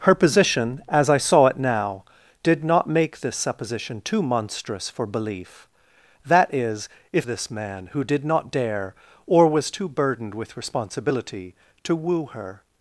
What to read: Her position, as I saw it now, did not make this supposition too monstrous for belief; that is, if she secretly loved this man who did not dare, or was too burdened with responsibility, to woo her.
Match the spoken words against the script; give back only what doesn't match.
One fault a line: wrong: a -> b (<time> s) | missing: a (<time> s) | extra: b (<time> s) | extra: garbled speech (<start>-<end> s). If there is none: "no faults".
missing: she secretly loved (7.3 s)